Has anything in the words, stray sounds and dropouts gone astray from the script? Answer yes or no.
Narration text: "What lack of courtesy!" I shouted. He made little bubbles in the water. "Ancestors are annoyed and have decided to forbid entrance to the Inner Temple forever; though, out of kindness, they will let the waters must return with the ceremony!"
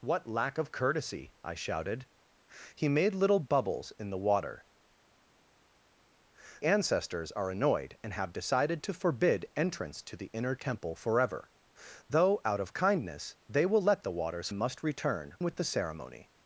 no